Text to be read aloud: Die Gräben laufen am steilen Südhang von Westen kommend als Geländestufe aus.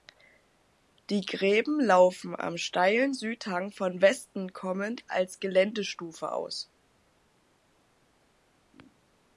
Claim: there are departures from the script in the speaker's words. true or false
false